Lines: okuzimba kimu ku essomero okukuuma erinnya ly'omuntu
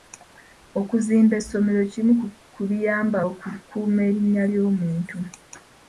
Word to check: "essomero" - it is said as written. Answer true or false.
false